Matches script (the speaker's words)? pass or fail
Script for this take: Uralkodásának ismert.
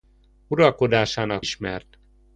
pass